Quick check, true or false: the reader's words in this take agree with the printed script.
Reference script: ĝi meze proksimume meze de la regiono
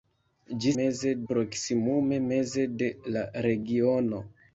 true